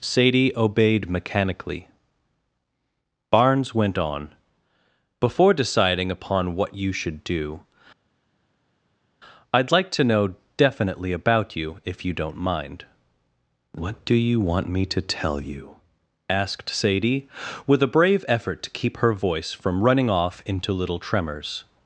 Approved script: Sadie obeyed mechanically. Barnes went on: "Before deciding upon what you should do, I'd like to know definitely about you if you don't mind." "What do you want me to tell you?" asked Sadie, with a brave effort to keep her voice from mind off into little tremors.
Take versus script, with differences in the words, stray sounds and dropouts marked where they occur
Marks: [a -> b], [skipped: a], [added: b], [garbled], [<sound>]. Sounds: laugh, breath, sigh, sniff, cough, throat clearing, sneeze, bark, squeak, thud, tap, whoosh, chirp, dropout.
Sadie obeyed mechanically. Barnes went on: "Before deciding upon what you should do, I'd like to know definitely about you if you don't mind." "What do you want me to tell you?" asked Sadie, with a brave effort to keep her voice from [mind -> running] off into little tremors.